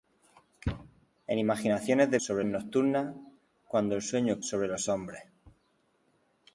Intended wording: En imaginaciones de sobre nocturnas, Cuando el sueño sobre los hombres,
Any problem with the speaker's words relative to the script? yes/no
no